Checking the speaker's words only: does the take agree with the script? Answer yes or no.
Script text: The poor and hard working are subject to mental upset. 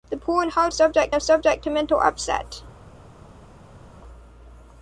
no